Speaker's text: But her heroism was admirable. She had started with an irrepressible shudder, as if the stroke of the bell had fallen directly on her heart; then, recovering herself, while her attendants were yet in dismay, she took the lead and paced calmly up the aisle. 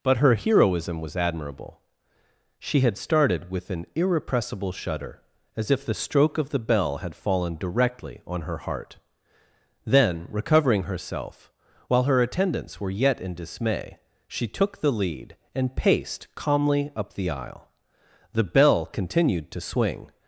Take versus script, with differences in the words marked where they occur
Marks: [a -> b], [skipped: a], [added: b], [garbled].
But her heroism was admirable. She had started with an irrepressible shudder, as if the stroke of the bell had fallen directly on her heart; then, recovering herself, while her attendants were yet in dismay, she took the lead and paced calmly up the aisle. [added: The bell continued to swing]